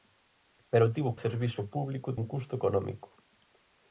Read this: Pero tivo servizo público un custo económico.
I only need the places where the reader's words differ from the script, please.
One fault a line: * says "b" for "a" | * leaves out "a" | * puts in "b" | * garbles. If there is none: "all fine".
all fine